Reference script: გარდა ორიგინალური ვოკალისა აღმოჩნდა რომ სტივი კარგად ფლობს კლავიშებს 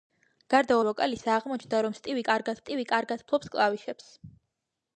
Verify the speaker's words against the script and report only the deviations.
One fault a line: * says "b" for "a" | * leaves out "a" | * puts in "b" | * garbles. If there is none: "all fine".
* leaves out "ორიგინალური"
* puts in "სტივი კარგად"